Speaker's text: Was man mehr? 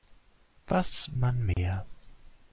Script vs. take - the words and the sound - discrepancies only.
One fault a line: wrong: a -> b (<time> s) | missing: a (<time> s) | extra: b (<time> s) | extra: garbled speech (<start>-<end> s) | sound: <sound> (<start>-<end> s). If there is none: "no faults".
sound: dropout (1.5-1.6 s)